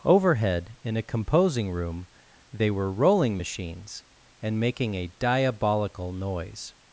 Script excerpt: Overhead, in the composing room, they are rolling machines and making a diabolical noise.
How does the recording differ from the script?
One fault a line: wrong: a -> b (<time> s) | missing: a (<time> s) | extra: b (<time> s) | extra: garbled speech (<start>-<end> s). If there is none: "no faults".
wrong: the -> a (1.0 s)
wrong: are -> were (2.7 s)